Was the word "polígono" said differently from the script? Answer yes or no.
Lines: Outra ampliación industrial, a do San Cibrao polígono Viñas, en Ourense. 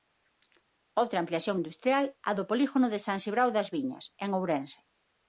yes